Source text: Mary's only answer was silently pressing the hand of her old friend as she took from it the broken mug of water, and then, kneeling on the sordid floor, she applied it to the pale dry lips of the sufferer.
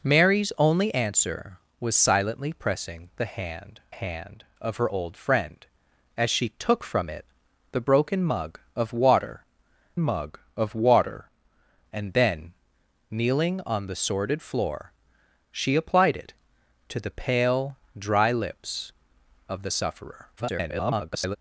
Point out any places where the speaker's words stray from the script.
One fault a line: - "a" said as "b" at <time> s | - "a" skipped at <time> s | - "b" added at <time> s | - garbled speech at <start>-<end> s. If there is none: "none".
- "hand" added at 3.9 s
- "mug of water" added at 10.0 s
- garbled speech at 20.4-21.4 s